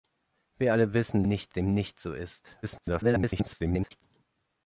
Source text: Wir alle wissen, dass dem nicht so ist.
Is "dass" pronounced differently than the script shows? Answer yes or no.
yes